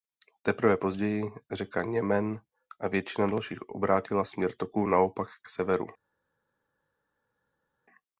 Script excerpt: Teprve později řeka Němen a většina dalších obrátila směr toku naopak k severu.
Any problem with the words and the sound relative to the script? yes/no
no